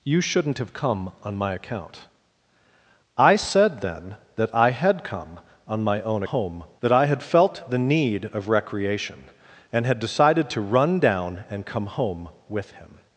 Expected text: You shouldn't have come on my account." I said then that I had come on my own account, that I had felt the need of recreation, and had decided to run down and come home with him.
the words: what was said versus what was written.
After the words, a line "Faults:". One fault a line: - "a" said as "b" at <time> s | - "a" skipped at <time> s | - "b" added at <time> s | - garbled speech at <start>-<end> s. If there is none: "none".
You shouldn't have come on my account." I said then that I had come on my own home, that I had felt the need of recreation, and had decided to run down and come home with him.
Faults:
- "account" said as "home" at 6.2 s